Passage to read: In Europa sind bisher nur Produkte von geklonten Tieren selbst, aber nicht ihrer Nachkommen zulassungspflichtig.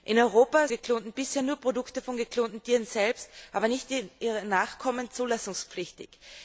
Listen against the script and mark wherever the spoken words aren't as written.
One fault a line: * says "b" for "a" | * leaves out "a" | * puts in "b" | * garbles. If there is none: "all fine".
* says "geklonten" for "sind"